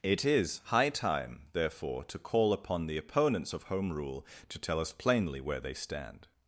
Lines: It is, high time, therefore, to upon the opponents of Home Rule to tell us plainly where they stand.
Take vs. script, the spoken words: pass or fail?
fail